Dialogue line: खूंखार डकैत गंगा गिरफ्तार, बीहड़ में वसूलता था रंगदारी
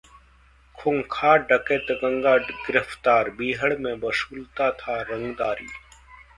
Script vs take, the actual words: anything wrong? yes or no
no